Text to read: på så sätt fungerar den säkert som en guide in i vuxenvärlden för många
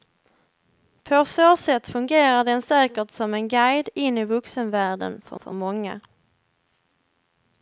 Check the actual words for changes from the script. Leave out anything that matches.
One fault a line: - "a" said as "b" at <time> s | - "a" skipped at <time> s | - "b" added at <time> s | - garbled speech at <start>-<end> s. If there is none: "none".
- "för" added at 5.4 s